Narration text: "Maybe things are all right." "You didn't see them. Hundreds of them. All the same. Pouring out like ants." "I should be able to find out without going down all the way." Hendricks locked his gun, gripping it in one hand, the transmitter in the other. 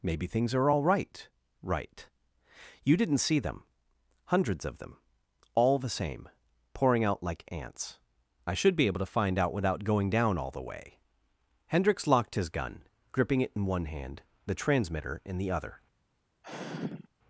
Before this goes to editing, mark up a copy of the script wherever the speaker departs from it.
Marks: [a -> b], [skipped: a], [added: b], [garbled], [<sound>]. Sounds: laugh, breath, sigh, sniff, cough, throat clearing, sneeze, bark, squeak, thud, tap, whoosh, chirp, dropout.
"Maybe things are all right." [added: right] "You didn't see them. Hundreds of them. All the same. Pouring out like ants." "I should be able to find out without going down all the way." Hendricks locked his gun, gripping it in one hand, the transmitter in the other. [sigh]